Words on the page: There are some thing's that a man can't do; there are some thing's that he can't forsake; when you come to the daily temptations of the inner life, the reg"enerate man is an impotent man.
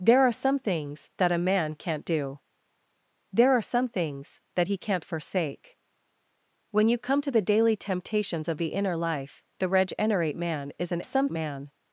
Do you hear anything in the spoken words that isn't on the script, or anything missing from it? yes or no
yes